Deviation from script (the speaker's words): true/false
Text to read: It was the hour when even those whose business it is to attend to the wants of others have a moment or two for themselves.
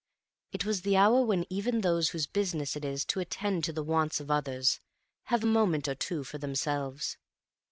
false